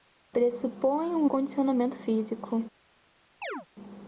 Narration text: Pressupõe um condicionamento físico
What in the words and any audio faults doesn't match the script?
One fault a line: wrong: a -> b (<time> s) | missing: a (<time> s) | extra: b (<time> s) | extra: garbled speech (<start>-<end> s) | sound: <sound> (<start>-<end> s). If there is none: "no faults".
sound: chirp (3.4-3.7 s)